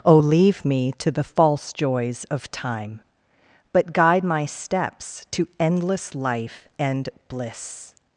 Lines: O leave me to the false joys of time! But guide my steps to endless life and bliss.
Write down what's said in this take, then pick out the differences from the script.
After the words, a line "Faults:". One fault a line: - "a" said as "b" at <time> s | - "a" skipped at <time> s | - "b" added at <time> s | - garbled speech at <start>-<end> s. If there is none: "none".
O leave me to the false joys of time! But guide my steps to endless life and bliss.
Faults:
none